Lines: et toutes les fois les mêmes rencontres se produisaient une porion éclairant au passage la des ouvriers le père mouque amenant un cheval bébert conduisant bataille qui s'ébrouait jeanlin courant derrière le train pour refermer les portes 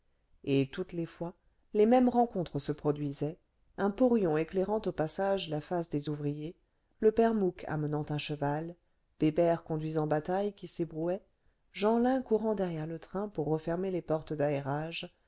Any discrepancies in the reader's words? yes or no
yes